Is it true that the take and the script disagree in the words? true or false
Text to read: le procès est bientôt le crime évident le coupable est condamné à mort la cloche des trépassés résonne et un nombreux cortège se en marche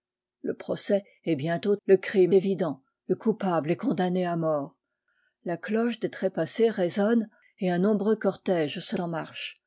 false